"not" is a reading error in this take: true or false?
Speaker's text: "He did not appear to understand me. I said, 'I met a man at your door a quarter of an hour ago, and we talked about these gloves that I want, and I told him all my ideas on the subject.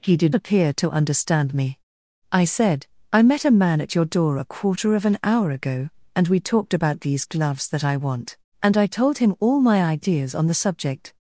true